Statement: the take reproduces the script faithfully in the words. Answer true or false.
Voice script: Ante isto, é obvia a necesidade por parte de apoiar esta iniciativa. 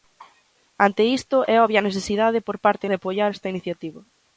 true